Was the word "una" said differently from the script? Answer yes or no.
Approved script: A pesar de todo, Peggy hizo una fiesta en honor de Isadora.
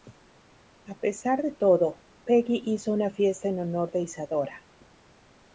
no